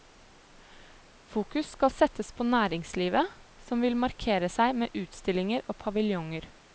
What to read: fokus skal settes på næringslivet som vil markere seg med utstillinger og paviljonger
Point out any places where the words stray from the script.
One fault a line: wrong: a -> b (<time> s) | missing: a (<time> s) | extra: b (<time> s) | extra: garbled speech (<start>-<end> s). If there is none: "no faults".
no faults